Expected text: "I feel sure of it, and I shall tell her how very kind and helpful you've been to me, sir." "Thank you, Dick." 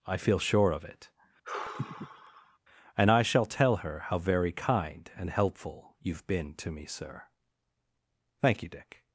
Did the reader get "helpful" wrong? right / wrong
right